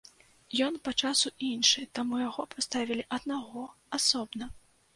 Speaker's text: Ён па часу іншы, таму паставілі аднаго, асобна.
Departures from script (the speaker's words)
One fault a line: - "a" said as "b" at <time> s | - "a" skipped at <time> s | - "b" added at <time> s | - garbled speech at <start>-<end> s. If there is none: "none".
- "яго" added at 2.2 s